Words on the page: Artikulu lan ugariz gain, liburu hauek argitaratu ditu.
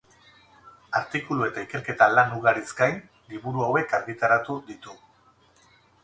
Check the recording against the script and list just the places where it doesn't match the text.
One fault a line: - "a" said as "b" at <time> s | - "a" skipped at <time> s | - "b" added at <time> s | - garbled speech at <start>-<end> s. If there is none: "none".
- "eta ikerketa" added at 1.5 s